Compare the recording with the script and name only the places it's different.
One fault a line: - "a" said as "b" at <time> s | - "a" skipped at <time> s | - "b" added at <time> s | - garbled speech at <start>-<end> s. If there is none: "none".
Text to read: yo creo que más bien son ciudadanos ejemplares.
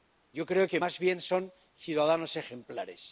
none